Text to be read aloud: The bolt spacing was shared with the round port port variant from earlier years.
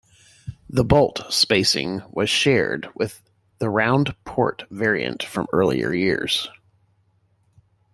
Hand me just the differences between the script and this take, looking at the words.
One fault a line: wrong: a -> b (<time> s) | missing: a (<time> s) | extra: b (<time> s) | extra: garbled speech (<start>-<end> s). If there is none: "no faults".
missing: port (4.6 s)